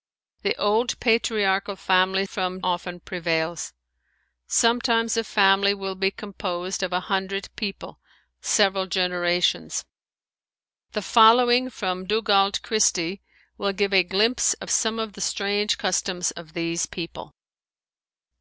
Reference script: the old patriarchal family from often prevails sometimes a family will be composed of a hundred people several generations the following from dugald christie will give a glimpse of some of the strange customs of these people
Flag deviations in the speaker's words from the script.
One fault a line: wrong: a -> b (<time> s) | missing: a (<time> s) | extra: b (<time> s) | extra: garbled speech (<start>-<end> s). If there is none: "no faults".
no faults